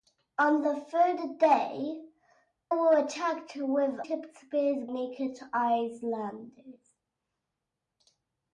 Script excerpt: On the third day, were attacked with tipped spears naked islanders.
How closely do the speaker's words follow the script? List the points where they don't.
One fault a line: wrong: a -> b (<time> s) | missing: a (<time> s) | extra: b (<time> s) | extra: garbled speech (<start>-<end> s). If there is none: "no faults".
no faults